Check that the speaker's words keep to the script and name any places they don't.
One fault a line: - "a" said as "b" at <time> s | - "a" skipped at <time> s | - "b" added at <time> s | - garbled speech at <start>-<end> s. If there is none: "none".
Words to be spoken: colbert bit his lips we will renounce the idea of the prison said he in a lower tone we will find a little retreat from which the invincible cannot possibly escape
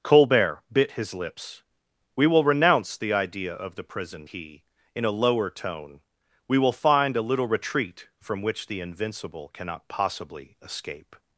- "said" skipped at 4.3 s